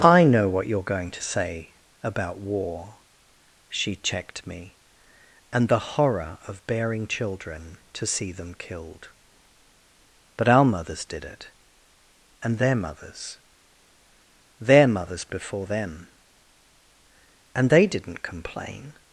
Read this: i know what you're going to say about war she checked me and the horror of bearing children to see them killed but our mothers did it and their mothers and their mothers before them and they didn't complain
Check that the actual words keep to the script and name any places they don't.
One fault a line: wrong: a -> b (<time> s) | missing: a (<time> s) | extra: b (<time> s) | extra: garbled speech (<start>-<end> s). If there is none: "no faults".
missing: and (13.4 s)